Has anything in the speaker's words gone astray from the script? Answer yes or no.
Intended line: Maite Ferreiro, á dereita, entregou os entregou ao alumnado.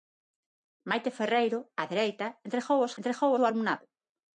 no